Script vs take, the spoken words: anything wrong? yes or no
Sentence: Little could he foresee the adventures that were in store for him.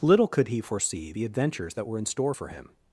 no